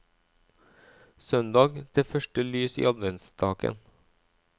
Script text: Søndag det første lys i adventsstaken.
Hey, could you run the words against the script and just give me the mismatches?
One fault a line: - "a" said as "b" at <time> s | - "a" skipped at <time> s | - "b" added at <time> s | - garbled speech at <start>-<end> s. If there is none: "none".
none